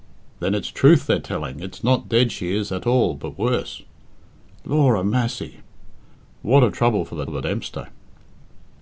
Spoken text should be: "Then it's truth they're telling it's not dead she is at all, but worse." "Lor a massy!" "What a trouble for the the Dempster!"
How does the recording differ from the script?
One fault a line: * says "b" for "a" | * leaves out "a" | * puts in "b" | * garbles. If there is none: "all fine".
all fine